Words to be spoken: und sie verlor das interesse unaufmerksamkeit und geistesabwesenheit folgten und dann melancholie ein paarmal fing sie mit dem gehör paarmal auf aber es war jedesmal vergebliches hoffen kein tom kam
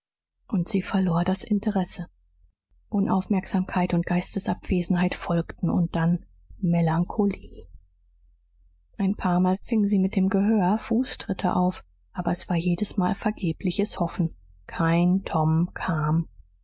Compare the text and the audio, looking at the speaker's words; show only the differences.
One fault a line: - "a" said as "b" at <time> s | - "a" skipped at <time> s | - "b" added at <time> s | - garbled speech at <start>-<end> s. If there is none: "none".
- "paarmal" said as "fußtritte" at 10.8 s